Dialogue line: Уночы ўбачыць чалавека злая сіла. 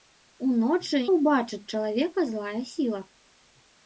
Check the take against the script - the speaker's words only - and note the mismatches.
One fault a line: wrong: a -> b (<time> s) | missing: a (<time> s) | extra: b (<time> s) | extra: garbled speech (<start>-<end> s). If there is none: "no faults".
no faults